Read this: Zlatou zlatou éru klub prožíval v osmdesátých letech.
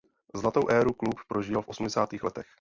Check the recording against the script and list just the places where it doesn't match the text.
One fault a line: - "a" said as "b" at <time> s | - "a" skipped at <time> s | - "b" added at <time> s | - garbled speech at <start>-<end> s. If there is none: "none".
- "zlatou" skipped at 0.7 s